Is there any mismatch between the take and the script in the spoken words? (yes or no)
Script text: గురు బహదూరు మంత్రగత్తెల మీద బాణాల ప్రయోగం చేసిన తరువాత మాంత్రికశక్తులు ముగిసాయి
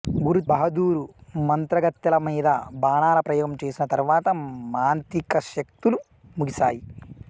no